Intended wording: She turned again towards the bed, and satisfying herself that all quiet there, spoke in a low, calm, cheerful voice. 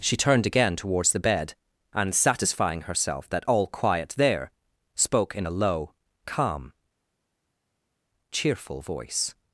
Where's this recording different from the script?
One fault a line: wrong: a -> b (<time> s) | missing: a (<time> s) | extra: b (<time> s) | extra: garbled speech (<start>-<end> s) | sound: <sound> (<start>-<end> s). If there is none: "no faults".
no faults